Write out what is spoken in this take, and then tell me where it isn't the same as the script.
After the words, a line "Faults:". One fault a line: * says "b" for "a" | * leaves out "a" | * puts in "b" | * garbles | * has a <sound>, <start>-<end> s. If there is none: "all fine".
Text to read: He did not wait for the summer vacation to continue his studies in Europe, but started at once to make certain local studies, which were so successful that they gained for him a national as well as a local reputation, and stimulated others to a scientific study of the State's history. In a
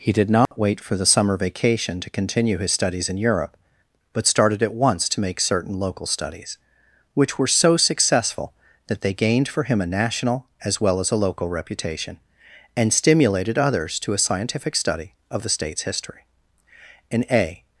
He did not wait for the summer vacation to continue his studies in Europe, but started at once to make certain local studies, which were so successful that they gained for him a national as well as a local reputation, and stimulated others to a scientific study of the State's history. In a
Faults:
* has a dropout, 0.5-0.5 s